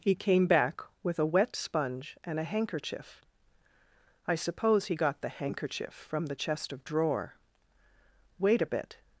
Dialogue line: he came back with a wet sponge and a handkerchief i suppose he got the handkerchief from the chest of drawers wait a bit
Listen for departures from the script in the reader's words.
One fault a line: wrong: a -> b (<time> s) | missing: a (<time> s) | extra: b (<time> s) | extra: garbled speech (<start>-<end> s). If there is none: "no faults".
wrong: drawers -> drawer (6.8 s)